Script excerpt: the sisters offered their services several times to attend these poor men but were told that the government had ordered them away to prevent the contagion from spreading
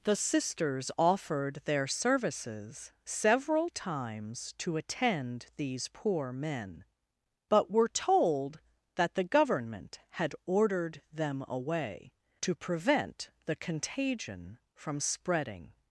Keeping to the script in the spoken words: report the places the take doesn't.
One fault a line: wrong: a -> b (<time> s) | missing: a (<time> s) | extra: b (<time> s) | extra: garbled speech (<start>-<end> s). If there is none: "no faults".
no faults